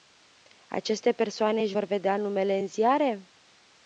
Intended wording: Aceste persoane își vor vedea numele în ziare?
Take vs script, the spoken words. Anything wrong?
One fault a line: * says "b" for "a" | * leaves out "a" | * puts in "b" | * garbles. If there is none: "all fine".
all fine